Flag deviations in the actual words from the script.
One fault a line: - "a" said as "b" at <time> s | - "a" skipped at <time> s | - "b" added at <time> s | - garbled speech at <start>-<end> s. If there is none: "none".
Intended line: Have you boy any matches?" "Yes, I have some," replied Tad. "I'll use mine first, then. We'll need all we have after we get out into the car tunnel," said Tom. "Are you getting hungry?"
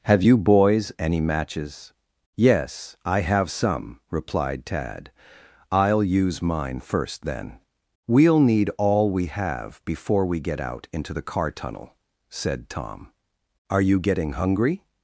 - "boy" said as "boys" at 0.4 s
- "after" said as "before" at 9.8 s